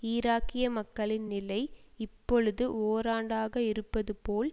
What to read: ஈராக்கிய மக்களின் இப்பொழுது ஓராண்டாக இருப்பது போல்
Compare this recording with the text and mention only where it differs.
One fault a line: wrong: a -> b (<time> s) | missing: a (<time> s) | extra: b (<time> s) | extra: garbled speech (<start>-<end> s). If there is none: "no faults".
extra: நிலை (1.3 s)